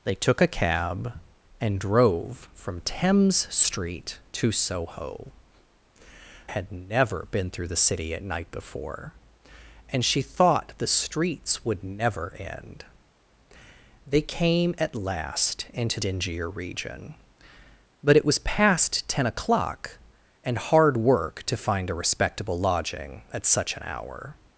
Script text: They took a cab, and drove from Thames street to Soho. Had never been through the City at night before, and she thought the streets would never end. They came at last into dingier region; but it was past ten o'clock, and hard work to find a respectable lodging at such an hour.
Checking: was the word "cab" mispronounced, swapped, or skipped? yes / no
no